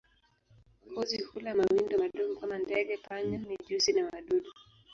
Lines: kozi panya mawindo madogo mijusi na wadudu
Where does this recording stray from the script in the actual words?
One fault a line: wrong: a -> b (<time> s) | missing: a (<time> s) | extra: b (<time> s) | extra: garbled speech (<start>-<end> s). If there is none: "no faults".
wrong: panya -> hula (1.2 s)
extra: kama ndege panya (2.4 s)